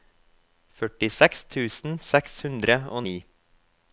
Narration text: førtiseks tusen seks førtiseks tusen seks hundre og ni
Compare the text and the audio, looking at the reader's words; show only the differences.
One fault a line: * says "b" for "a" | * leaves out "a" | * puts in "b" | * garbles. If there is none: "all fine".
* leaves out "førtiseks tusen seks"